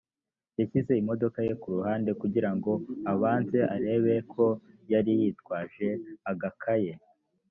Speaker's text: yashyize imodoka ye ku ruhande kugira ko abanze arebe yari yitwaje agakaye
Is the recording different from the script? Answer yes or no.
yes